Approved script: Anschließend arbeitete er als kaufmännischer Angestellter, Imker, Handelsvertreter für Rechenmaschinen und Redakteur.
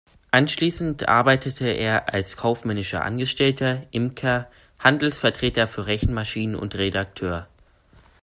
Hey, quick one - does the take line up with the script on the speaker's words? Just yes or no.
yes